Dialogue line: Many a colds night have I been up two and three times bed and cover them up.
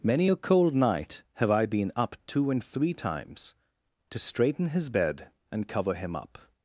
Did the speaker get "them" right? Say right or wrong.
wrong